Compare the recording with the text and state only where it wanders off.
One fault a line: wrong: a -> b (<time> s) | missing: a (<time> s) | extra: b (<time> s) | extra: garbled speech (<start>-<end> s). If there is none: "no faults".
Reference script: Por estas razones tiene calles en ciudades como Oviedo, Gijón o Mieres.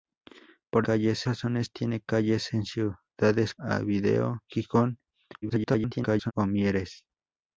wrong: estas -> calles (0.8 s)
missing: como (3.5 s)
extra: garbled speech (5.4-6.3 s)